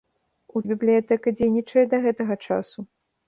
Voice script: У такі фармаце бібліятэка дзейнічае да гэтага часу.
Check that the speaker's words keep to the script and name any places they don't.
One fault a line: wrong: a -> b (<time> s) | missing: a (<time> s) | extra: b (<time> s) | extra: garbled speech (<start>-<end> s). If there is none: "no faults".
missing: такі фармаце (0.6 s)